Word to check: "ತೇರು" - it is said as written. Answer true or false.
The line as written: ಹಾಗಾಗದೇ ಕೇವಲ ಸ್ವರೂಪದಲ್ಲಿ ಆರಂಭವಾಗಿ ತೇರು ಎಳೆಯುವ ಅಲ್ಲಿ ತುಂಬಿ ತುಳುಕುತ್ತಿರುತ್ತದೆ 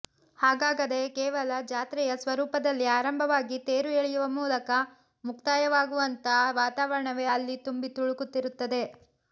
true